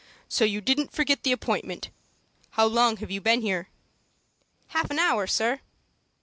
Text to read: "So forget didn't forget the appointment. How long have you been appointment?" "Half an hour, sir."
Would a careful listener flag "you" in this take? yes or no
no